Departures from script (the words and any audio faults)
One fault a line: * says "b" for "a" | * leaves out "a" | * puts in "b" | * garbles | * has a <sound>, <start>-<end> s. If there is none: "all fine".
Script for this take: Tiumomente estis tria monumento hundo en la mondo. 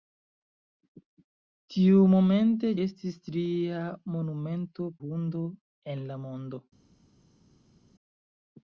all fine